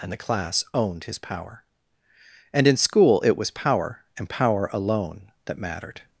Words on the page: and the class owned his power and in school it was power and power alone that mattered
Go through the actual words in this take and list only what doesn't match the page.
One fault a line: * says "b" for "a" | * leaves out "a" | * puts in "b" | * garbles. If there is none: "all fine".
all fine